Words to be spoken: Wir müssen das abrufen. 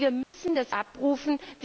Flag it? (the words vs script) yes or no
no